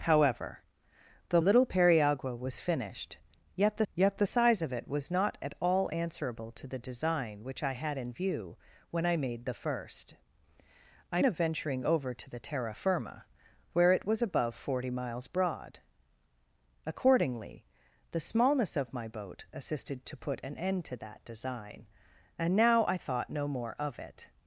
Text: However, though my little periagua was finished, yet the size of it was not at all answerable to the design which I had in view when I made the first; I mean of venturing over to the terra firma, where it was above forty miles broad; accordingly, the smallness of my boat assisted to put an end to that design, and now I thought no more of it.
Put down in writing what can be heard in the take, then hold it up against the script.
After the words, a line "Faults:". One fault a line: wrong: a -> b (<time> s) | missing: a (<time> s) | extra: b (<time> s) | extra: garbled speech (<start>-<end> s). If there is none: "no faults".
However, though little periagua was finished, yet the yet the size of it was not at all answerable to the design which I had in view when I made the first; I of venturing over to the terra firma, where it was above forty miles broad; accordingly, the smallness of my boat assisted to put an end to that design, and now I thought no more of it.
Faults:
missing: my (1.4 s)
extra: yet the (3.9 s)
missing: mean (11.2 s)